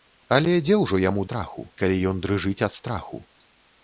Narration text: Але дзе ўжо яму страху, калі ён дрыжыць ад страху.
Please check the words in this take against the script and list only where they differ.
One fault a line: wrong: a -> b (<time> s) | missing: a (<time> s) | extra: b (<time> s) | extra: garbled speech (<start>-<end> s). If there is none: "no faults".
no faults